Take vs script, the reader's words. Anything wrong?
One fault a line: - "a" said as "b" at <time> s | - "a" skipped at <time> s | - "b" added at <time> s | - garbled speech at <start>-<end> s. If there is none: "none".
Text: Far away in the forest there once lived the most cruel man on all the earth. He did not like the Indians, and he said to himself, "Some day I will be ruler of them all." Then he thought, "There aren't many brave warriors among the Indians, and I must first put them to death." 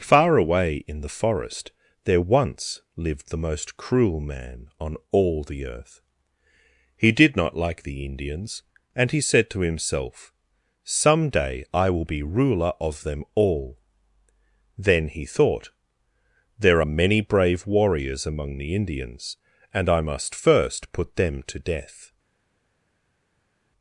- "aren't" said as "are" at 16.8 s